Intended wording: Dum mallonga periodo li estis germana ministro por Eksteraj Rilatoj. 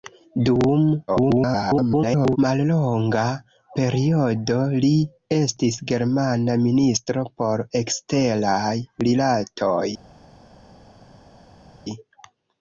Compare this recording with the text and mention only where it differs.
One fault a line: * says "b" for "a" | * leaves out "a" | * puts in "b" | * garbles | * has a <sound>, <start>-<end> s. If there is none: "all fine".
* garbles